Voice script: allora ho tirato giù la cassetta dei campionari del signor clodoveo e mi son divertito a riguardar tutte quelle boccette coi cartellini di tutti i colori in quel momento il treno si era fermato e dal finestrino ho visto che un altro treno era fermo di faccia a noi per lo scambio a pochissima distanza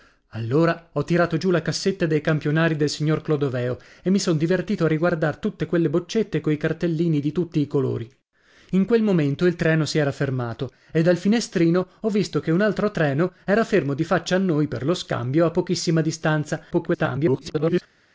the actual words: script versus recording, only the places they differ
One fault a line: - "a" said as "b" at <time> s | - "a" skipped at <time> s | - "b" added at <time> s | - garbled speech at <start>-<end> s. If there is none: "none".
- garbled speech at 16.7-17.8 s